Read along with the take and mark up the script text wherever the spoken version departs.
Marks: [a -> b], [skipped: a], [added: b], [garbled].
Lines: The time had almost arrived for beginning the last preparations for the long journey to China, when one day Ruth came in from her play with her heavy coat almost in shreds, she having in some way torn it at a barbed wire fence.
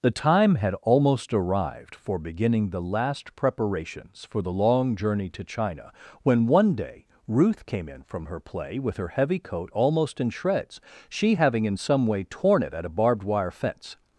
The time had almost arrived for beginning the last preparations for the long journey to China, when one day Ruth came in from her play with her heavy coat almost in shreds, she having in some way torn it at a barbed wire fence.